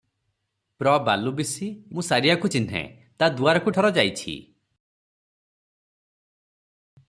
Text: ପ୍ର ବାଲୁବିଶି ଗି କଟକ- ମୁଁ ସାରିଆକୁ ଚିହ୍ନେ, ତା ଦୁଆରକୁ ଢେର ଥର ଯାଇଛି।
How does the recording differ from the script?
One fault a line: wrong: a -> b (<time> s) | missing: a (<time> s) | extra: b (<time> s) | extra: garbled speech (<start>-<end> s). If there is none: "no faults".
missing: ଗି କଟକ (1.8 s)
missing: ଢେର (3.7 s)